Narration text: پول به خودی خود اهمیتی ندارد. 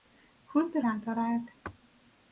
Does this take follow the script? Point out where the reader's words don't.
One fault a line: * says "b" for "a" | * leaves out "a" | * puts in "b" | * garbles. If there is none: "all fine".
* leaves out "خودی خود اهمیتی"